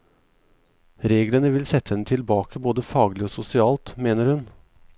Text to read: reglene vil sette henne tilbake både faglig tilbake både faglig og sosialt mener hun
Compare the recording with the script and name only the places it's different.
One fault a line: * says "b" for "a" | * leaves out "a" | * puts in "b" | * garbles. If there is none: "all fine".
* leaves out "tilbake både faglig"